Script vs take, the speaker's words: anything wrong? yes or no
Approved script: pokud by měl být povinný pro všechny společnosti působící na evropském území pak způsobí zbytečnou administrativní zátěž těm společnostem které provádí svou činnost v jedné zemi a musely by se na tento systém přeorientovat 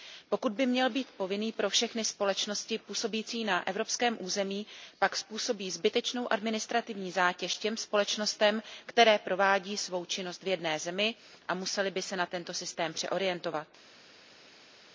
no